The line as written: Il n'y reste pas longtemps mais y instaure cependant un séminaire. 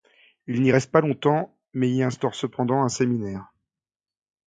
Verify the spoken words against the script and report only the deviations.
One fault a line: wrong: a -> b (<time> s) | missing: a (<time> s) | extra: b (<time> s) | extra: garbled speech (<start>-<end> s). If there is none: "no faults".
no faults